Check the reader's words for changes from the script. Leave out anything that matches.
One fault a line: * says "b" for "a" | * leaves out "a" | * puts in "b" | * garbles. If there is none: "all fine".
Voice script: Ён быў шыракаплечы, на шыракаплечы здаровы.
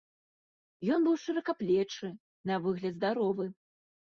* says "выгляд" for "шыракаплечы"